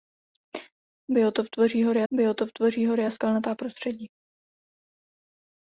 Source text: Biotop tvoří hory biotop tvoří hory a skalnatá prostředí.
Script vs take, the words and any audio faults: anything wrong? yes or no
no